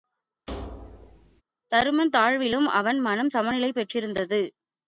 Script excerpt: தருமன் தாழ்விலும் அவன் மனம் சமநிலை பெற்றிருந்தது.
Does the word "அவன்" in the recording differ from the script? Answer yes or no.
no